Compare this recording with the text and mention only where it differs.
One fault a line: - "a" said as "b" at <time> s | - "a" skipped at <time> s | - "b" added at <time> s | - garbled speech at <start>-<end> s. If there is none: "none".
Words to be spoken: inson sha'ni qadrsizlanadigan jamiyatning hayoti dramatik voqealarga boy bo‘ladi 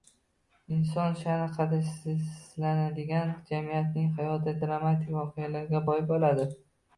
none